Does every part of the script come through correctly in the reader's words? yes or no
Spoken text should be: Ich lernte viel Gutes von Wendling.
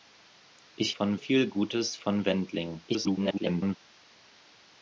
no